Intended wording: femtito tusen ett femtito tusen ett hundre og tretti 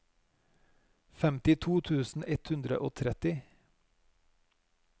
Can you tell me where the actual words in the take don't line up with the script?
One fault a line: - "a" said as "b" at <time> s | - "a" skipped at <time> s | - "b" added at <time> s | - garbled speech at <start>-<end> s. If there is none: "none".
- "femtito tusen ett" skipped at 2.5 s